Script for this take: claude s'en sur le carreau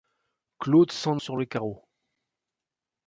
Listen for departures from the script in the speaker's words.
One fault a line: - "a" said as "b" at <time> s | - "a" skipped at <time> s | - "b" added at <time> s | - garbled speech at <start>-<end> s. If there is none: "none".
none